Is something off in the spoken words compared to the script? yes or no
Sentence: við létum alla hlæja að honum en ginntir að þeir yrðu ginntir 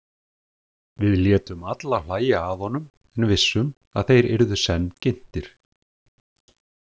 yes